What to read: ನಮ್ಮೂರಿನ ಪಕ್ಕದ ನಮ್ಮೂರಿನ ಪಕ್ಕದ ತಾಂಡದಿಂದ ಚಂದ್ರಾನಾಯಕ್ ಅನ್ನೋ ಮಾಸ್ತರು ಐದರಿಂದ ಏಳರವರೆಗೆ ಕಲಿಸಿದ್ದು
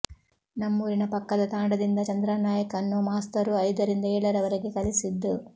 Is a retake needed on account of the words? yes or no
yes